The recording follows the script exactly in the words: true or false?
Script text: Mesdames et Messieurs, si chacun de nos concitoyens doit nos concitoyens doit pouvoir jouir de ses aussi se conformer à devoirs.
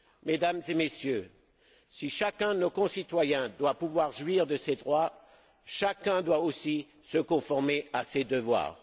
false